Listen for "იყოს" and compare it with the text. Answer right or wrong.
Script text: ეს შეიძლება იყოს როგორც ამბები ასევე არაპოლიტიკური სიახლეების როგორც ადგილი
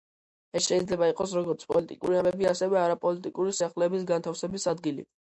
right